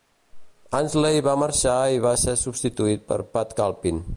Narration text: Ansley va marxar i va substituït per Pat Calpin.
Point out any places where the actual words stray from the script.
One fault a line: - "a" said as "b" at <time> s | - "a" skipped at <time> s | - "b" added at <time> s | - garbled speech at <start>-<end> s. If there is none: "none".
- "ser" added at 2.2 s